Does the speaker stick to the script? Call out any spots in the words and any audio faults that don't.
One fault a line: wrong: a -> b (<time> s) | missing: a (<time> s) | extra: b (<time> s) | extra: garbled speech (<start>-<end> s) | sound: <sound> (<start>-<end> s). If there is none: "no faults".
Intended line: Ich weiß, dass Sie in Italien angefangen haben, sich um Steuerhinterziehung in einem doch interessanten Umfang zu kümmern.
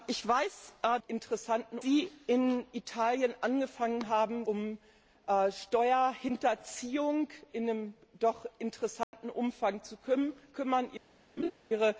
wrong: dass -> interessanten (1.1 s)
missing: sich (4.5 s)
sound: dropout (9.0-9.1 s)
sound: laugh (11.4-11.5 s)